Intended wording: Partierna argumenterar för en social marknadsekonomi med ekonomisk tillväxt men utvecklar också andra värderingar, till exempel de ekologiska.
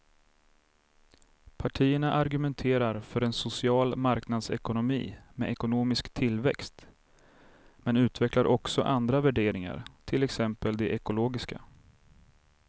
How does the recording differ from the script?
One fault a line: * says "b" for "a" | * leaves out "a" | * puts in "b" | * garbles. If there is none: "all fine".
all fine